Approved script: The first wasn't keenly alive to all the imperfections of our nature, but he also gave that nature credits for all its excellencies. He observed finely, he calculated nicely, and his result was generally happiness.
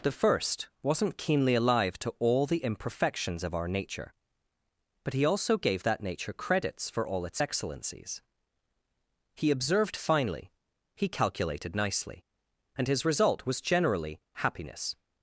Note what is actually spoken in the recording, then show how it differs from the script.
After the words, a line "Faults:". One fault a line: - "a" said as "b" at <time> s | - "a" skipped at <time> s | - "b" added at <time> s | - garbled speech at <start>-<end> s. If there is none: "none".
The first wasn't keenly alive to all the imperfections of our nature, but he also gave that nature credits for all its excellencies. He observed finely, he calculated nicely, and his result was generally happiness.
Faults:
none